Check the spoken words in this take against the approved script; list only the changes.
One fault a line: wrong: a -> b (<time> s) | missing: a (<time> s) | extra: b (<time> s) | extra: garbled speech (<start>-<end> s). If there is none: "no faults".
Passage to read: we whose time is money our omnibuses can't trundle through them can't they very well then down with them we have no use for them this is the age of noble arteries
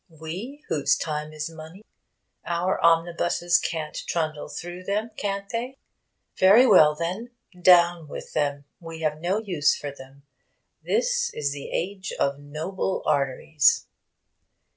no faults